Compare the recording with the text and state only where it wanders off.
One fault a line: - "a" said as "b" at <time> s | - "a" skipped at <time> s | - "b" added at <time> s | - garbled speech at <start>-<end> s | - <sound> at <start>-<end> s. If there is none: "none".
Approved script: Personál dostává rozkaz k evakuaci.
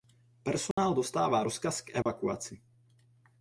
- dropout at 0.7-0.8 s
- dropout at 2.0-2.1 s